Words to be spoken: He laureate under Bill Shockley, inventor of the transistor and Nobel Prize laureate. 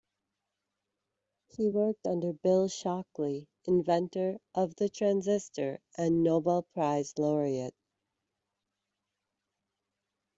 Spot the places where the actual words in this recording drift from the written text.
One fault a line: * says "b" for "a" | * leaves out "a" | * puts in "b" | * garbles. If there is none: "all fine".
* says "worked" for "laureate"